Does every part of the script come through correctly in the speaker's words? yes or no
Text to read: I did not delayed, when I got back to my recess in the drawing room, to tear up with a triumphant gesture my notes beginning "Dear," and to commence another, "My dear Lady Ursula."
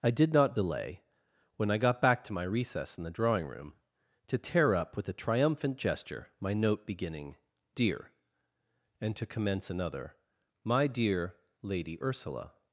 no